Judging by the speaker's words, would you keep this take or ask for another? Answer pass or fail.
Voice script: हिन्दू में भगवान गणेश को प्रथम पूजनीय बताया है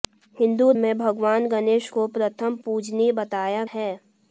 pass